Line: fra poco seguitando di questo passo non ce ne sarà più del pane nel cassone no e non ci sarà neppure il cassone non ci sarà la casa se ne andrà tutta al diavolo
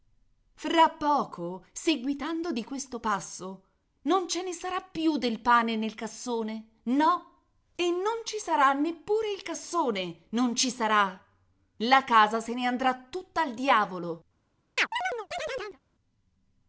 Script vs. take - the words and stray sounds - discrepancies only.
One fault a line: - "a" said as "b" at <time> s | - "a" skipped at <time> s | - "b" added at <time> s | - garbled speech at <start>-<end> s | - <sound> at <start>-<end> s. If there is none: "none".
- chirp at 14.8-15.8 s